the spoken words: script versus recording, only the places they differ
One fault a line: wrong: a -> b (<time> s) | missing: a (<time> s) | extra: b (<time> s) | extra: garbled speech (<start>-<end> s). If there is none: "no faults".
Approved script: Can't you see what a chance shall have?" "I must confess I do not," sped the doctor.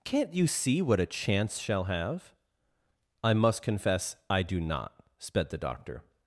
no faults